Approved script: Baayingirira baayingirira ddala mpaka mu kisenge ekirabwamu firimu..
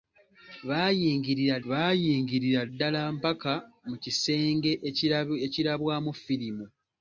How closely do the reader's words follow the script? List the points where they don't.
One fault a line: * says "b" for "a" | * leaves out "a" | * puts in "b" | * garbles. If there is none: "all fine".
all fine